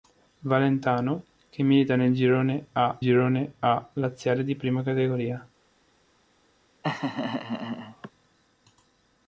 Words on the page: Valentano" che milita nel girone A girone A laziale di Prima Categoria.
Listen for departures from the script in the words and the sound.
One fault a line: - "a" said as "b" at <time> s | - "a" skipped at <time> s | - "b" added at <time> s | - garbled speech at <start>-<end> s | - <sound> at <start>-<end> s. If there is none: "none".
- laugh at 6.8-8.1 s